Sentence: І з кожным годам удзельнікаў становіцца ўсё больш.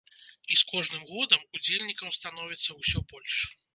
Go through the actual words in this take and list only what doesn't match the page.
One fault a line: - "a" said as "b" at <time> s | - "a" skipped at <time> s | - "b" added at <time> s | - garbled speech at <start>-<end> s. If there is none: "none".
none